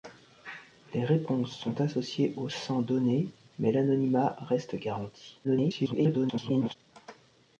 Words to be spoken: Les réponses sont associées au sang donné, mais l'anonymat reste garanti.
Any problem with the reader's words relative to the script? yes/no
yes